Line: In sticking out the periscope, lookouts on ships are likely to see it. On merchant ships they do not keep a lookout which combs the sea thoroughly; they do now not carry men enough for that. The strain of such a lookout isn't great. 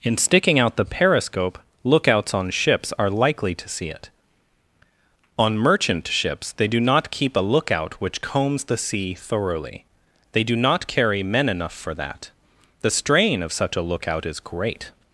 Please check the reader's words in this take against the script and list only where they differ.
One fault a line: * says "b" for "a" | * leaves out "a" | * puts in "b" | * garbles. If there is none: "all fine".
* leaves out "now"
* says "is" for "isn't"